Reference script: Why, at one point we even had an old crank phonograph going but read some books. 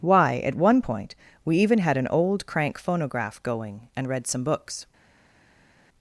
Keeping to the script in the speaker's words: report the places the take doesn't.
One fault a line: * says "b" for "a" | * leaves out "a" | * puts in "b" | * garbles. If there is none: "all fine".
* says "and" for "but"